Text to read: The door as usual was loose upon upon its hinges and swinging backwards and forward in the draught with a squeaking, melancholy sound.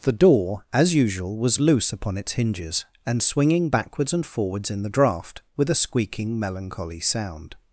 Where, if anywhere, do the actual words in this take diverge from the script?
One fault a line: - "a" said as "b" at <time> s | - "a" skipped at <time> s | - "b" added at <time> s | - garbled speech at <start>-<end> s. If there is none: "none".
- "upon" skipped at 2.2 s
- "forward" said as "forwards" at 4.2 s